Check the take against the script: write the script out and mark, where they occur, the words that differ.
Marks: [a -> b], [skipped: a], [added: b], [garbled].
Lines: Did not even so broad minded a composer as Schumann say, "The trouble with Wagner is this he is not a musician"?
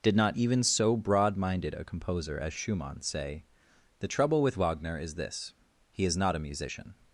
Did not even so broad minded a composer as Schumann say, "The trouble with Wagner is this he is not a musician"?